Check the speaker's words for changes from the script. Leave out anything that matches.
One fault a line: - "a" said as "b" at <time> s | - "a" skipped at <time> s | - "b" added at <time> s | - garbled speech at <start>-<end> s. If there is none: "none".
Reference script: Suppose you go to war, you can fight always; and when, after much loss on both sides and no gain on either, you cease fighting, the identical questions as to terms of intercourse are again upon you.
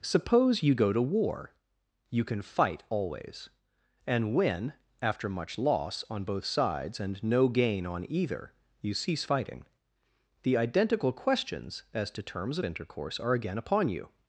none